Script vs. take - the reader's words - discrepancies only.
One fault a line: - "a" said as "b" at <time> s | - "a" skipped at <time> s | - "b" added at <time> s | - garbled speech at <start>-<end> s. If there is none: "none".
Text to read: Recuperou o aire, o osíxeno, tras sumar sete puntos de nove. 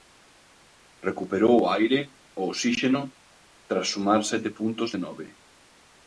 none